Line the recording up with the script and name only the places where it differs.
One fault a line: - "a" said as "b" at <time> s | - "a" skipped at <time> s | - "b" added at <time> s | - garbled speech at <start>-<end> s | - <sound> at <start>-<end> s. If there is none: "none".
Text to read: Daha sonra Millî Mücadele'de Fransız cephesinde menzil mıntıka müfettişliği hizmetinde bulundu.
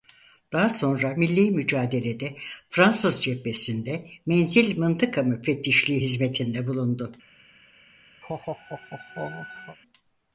- laugh at 8.2-9.8 s